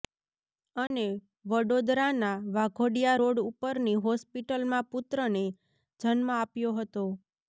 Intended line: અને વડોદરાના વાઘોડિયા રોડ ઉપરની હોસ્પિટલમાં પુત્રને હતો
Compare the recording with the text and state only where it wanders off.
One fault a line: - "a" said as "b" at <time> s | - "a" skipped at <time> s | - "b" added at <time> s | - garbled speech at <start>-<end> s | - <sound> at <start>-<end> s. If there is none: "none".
- dropout at 0.9-0.9 s
- "જન્મ આપ્યો" added at 6.0 s